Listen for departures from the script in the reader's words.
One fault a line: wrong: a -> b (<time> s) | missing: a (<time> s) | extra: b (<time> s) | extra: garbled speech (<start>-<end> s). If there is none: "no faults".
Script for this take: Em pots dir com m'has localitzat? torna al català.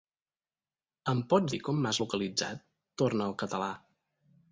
no faults